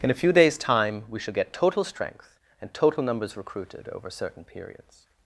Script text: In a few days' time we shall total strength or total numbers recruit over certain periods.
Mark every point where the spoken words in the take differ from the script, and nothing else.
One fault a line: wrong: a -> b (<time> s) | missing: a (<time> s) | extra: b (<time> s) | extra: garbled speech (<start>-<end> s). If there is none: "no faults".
extra: get (1.3 s)
wrong: or -> and (2.6 s)
wrong: recruit -> recruited (3.4 s)